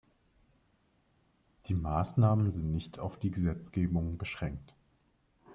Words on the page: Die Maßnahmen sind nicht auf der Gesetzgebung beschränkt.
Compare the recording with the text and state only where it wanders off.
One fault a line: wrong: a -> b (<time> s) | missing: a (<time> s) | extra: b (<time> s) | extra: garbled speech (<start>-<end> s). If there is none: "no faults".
wrong: der -> die (3.2 s)